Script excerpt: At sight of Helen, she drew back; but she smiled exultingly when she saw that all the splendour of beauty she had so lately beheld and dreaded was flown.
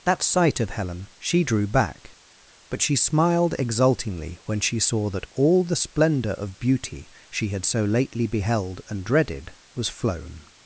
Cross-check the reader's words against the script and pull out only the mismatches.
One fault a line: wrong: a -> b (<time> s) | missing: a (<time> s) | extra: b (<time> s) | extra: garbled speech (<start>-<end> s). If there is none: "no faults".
wrong: At -> That (0.0 s)